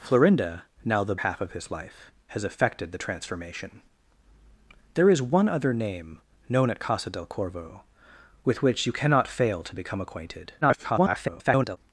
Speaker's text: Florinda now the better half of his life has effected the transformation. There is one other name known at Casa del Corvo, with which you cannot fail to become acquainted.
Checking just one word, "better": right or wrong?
wrong